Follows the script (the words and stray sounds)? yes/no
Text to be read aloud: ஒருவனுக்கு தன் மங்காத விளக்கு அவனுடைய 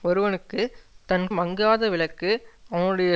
yes